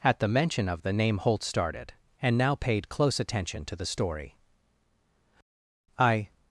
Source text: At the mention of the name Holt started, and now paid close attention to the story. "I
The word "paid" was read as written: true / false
true